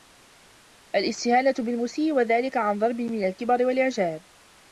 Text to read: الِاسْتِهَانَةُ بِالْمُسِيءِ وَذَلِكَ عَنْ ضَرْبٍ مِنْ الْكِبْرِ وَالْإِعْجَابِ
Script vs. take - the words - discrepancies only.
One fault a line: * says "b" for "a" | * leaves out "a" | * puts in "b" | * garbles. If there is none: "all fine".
all fine